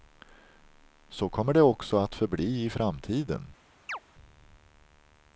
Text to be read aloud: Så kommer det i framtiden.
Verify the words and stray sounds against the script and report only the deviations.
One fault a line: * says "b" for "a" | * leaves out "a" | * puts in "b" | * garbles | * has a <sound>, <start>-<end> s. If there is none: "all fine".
* puts in "också att förbli"
* has a chirp, 3.9-4.0 s